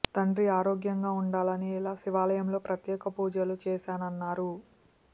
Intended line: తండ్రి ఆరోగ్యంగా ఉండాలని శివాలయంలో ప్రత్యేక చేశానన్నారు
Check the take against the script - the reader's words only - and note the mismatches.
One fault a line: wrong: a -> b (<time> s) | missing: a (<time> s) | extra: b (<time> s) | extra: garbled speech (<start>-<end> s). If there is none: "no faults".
extra: ఇలా (1.8 s)
extra: పూజలు (3.2 s)